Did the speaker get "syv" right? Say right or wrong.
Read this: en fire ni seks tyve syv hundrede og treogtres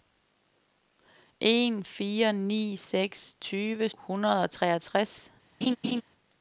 wrong